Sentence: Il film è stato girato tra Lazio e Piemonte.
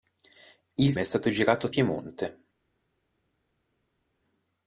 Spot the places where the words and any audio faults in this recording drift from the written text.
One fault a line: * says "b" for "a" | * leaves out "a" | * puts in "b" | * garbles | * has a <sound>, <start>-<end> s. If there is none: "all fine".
* leaves out "film"
* leaves out "tra Lazio e"